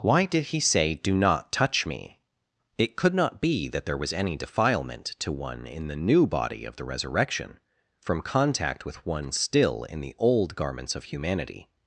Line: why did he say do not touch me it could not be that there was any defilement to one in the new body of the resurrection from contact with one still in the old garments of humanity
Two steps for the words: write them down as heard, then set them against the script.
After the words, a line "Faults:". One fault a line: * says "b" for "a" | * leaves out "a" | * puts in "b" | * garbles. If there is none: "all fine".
why did he say do not touch me it could not be that there was any defilement to one in the new body of the resurrection from contact with one still in the old garments of humanity
Faults:
all fine